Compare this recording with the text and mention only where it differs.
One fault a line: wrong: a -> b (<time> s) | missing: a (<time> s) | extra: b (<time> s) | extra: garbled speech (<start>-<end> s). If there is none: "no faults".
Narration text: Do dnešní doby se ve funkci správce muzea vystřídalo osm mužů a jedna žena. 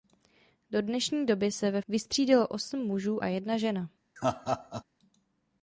missing: funkci správce muzea (1.8 s)